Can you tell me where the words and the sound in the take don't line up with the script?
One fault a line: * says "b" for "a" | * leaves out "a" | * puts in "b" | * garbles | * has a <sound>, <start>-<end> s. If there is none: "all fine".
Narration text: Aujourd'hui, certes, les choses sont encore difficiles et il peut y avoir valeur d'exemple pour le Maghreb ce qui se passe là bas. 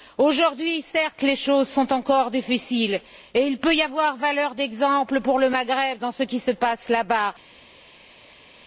* puts in "dans"